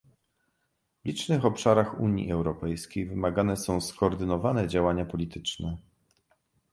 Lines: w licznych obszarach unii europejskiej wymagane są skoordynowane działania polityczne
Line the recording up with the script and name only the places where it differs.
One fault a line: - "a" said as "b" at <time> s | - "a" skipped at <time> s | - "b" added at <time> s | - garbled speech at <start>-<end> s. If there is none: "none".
none